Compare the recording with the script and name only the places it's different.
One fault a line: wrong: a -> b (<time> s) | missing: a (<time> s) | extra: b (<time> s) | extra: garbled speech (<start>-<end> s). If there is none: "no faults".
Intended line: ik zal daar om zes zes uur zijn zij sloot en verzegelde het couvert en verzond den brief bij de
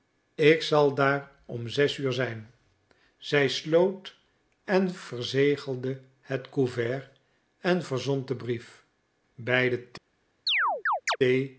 missing: zes (2.0 s)